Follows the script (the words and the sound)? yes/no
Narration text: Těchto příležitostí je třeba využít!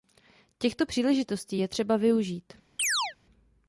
no